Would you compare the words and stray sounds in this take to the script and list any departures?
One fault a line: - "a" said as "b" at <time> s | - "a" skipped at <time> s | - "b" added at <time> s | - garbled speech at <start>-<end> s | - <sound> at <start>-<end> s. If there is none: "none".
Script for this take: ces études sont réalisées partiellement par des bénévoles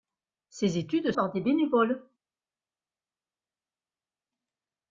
- "sont réalisées partiellement" skipped at 1.1 s